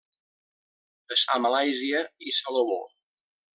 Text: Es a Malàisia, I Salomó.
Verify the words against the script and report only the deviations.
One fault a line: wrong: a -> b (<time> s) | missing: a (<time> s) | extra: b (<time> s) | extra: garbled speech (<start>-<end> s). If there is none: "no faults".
no faults